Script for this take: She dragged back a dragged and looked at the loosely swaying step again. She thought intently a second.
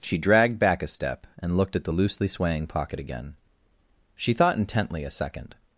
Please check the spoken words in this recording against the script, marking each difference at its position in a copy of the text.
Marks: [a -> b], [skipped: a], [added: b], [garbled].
She dragged back a [dragged -> step] and looked at the loosely swaying [step -> pocket] again. She thought intently a second.